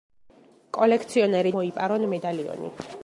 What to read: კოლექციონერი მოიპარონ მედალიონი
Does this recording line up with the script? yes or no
yes